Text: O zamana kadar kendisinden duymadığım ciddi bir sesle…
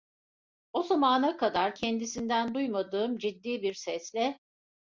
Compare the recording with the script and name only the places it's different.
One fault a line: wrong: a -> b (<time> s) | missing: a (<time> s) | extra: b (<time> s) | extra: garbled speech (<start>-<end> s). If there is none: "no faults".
no faults